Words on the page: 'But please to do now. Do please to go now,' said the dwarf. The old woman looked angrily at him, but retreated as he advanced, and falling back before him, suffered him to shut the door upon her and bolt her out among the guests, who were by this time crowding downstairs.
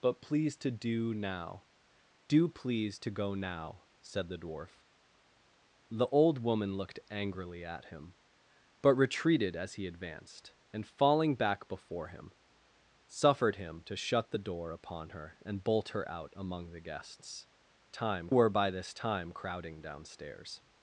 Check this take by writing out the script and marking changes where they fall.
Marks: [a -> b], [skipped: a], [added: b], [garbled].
'But please to do now. Do please to go now,' said the dwarf. The old woman looked angrily at him, but retreated as he advanced, and falling back before him, suffered him to shut the door upon her and bolt her out among the guests, [who -> time] were by this time crowding downstairs.